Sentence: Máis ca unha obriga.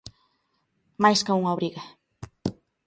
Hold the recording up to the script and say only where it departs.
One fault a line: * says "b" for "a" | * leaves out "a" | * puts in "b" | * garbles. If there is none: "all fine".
all fine